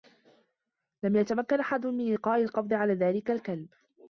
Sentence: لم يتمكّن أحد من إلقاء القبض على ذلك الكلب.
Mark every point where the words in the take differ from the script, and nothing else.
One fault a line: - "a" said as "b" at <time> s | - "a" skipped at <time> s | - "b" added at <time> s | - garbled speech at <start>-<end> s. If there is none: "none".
none